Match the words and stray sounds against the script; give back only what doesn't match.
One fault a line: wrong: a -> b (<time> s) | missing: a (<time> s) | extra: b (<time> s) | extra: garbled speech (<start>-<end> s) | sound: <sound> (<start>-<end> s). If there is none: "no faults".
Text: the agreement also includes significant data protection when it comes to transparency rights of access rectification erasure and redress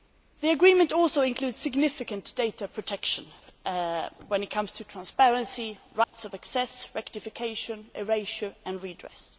sound: dropout (6.0-6.1 s)